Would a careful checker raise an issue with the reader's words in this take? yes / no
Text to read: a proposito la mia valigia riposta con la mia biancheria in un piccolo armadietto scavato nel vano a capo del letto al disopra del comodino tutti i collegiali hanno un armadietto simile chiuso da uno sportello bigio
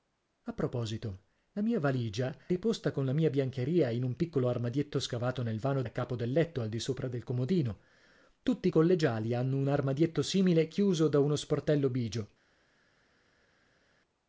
no